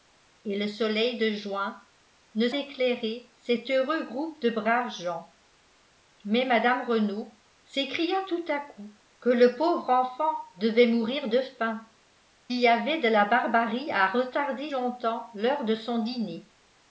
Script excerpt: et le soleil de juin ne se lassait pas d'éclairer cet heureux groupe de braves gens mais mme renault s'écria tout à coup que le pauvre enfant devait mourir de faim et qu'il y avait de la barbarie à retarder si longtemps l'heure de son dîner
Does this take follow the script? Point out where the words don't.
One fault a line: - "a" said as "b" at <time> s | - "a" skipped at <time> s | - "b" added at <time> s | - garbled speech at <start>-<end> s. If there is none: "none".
- "se lassait pas" skipped at 2.5 s
- "et qu'il" skipped at 11.8 s
- "si" skipped at 14.7 s